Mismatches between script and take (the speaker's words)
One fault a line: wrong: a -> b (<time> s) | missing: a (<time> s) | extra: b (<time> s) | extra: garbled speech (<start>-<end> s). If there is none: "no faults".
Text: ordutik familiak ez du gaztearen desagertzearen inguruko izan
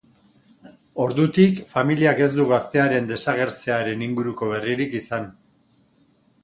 extra: berririk (4.5 s)